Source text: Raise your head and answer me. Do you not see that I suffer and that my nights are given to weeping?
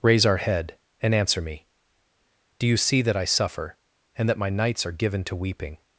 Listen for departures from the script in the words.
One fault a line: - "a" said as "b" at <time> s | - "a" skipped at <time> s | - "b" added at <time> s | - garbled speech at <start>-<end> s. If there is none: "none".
- "your" said as "our" at 0.2 s
- "not" skipped at 2.8 s